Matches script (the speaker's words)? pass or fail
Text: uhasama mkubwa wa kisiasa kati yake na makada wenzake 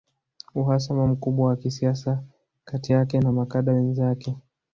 pass